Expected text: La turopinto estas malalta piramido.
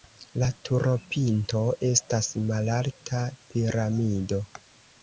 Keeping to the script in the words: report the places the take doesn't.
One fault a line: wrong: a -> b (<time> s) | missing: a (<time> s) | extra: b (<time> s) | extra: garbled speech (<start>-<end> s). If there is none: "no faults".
no faults